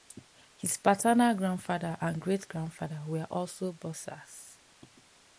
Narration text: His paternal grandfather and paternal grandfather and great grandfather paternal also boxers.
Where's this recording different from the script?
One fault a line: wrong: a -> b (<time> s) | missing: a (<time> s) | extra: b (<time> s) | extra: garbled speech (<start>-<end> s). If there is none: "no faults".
missing: paternal grandfather and (2.2 s)
wrong: paternal -> were (3.0 s)